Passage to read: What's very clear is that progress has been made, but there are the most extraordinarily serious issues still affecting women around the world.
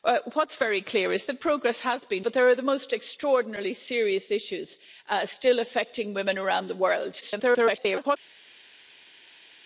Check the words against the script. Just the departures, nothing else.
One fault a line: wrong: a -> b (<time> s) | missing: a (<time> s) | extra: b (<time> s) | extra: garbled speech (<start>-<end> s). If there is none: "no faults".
missing: made (2.2 s)
extra: garbled speech (7.2-8.2 s)